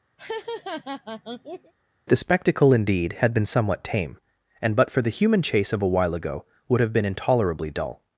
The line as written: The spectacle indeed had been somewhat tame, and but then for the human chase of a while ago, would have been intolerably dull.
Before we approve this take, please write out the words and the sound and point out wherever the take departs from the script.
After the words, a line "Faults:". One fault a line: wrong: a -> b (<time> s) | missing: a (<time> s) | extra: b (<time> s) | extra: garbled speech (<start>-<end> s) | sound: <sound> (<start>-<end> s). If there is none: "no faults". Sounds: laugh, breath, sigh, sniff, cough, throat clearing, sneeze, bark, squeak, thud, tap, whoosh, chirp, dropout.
The spectacle indeed had been somewhat tame, and but for the human chase of a while ago, would have been intolerably dull.
Faults:
sound: laugh (0.2-1.7 s)
missing: then (4.9 s)